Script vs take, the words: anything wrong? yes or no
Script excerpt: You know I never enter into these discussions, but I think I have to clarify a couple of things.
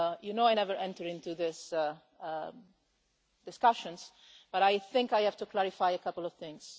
no